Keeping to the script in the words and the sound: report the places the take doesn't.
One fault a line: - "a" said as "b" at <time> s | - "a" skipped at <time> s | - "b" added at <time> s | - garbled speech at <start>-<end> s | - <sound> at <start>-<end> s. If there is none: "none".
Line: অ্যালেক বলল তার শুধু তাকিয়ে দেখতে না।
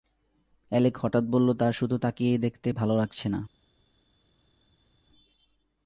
- "হঠাৎ" added at 1.0 s
- "ভালো লাগছে" added at 2.7 s